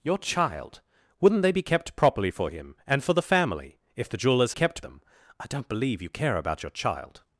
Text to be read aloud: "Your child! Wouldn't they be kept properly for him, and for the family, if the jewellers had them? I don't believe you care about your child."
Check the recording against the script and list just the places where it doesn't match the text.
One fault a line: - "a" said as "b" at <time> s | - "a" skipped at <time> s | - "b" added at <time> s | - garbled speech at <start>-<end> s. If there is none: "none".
- "had" said as "kept" at 4.5 s